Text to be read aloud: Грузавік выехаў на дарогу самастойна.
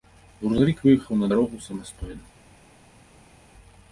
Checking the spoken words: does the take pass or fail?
pass